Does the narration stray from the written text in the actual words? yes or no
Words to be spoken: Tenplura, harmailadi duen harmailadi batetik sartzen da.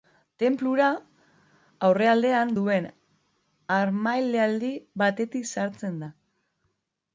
yes